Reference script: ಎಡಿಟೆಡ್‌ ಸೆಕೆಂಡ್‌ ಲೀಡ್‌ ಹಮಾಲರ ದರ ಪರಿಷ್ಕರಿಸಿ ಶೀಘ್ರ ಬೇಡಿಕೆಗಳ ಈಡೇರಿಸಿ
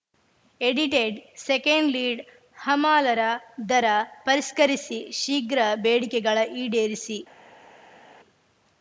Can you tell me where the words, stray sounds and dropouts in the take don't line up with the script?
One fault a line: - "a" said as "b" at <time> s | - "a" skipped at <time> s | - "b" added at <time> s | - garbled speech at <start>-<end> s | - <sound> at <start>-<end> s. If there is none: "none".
none